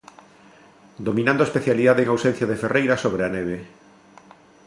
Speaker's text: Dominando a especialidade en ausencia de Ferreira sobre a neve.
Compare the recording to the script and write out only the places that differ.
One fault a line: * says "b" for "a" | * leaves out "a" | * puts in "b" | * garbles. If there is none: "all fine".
all fine